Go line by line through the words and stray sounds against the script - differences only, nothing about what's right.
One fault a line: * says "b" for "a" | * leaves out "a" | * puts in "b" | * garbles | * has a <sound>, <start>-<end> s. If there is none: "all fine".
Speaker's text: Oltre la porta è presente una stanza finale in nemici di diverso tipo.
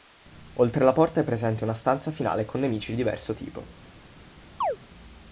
* says "con" for "in"
* has a chirp, 4.6-4.8 s